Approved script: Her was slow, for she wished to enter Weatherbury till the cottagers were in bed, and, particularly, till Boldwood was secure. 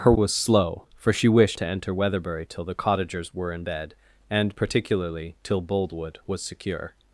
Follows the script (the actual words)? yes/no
yes